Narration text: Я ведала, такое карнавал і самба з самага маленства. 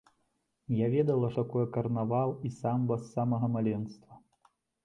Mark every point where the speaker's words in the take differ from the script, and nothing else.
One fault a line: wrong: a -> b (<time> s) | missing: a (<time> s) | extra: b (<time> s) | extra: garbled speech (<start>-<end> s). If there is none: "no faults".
no faults